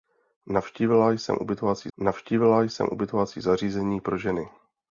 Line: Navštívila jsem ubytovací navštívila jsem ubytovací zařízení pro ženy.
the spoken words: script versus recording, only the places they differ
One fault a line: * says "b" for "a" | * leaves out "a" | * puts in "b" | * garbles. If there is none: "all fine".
all fine